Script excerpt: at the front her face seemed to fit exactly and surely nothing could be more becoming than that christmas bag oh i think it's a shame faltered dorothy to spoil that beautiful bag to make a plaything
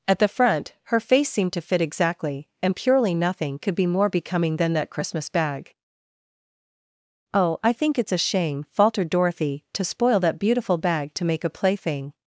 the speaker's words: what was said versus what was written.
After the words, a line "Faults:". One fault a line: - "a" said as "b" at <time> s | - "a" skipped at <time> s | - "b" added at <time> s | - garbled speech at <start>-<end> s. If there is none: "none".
at the front her face seemed to fit exactly and purely nothing could be more becoming than that christmas bag oh i think it's a shame faltered dorothy to spoil that beautiful bag to make a plaything
Faults:
- "surely" said as "purely" at 2.8 s